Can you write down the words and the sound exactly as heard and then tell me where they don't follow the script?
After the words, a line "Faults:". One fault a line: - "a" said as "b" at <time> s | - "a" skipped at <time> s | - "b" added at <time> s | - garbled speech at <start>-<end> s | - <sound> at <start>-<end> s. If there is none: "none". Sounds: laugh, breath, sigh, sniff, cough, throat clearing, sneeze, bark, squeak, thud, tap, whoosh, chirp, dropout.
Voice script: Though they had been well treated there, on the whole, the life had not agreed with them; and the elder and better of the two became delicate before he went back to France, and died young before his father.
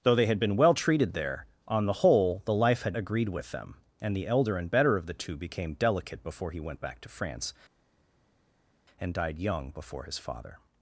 Though they had been well treated there, on the whole, the life had agreed with them; and the elder and better of the two became delicate before he went back to France, and died young before his father.
Faults:
- "not" skipped at 3.0 s